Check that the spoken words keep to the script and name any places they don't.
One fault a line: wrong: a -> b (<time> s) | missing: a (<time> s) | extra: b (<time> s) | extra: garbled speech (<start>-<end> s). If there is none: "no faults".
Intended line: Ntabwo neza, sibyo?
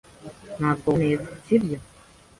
no faults